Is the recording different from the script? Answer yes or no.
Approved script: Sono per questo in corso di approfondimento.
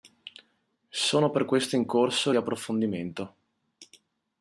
no